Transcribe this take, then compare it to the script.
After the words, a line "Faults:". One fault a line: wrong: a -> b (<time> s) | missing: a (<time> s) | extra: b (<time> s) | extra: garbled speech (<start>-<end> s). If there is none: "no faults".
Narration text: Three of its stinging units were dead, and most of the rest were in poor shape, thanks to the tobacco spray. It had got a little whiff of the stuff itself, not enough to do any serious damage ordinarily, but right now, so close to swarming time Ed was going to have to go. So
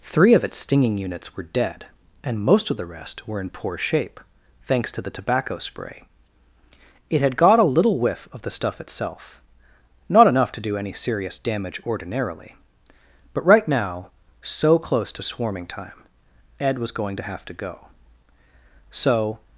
Three of its stinging units were dead, and most of the rest were in poor shape, thanks to the tobacco spray. It had got a little whiff of the stuff itself, not enough to do any serious damage ordinarily, but right now, so close to swarming time Ed was going to have to go. So
Faults:
no faults